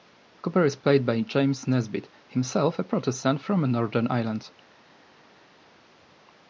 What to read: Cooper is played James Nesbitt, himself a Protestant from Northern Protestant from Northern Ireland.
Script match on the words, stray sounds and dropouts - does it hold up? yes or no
no